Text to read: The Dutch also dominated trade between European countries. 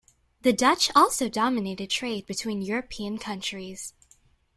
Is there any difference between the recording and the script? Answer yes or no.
no